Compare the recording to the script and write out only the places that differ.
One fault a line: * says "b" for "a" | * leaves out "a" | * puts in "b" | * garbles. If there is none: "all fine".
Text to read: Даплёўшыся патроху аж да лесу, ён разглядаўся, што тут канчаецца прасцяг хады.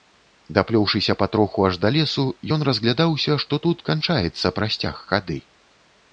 all fine